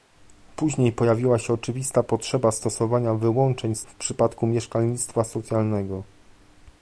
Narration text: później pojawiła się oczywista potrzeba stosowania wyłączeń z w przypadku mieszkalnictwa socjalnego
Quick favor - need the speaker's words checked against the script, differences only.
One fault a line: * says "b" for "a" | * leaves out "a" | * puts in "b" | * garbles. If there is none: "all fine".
all fine